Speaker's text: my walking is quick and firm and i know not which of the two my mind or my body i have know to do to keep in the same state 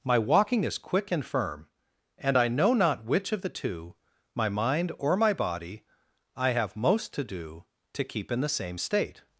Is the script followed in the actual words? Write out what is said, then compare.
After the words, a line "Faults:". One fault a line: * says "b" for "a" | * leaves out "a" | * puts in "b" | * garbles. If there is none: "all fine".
my walking is quick and firm and i know not which of the two my mind or my body i have most to do to keep in the same state
Faults:
* says "most" for "know"